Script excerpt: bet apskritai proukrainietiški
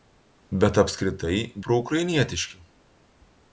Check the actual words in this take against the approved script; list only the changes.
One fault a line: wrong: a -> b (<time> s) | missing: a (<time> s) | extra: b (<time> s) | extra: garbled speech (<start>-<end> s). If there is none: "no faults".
no faults